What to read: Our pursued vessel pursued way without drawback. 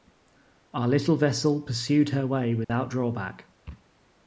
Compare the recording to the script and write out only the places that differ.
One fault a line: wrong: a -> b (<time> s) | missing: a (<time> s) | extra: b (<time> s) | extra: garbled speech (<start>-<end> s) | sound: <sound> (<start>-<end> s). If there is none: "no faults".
wrong: pursued -> little (0.9 s)
extra: her (2.1 s)
sound: dropout (2.6-2.7 s)